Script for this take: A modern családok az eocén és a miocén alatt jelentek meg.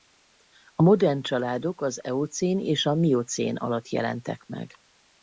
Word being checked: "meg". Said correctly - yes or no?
yes